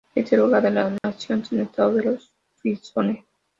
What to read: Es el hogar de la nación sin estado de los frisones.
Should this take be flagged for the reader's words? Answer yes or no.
no